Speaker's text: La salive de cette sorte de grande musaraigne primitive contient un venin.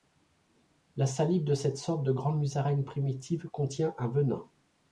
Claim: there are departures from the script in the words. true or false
false